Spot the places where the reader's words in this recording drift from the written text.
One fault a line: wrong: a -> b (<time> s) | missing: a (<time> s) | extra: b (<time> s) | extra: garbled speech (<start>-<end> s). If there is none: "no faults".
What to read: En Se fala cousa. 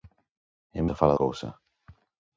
no faults